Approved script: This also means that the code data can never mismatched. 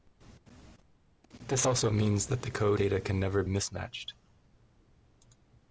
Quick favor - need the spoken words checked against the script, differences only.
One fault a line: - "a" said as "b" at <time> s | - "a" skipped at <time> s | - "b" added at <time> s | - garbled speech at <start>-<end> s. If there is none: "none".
none